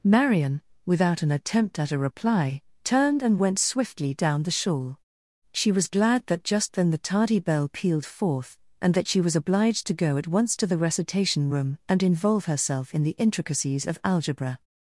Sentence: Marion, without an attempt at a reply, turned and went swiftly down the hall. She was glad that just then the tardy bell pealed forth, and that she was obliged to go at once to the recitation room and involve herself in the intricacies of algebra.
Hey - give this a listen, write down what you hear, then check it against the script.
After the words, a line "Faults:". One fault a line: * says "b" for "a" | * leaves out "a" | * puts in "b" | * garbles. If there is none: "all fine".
Marion, without an attempt at a reply, turned and went swiftly down the shawl. She was glad that just then the tardy bell pealed forth, and that she was obliged to go at once to the recitation room and involve herself in the intricacies of algebra.
Faults:
* says "shawl" for "hall"